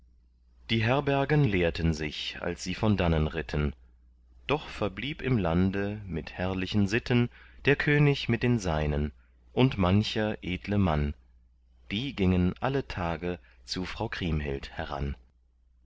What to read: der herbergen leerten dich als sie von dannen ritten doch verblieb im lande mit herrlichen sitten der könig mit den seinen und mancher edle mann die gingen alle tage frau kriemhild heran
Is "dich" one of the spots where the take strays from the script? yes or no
yes